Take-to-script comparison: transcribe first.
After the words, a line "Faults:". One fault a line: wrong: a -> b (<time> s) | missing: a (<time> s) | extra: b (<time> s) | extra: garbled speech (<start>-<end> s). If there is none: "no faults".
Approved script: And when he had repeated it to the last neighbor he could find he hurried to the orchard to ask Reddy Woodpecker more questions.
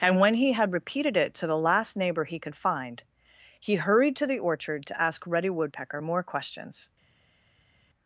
And when he had repeated it to the last neighbor he could find he hurried to the orchard to ask Reddy Woodpecker more questions.
Faults:
no faults